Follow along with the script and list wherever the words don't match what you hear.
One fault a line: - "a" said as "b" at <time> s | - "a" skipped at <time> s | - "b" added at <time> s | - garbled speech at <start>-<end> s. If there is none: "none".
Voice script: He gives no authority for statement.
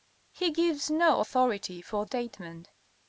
none